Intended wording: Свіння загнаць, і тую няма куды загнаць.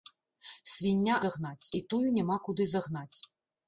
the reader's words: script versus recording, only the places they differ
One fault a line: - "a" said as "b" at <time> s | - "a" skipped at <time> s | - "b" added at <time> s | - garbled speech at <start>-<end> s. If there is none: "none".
none